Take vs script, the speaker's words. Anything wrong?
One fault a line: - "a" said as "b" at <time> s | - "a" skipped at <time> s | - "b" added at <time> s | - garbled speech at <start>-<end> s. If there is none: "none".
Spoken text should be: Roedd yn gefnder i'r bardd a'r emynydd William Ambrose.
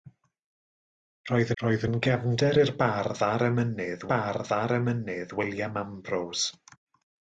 - "roedd" added at 1.6 s
- "bardd a'r emynydd" added at 4.1 s